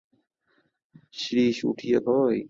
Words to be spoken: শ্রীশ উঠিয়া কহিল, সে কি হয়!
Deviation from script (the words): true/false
true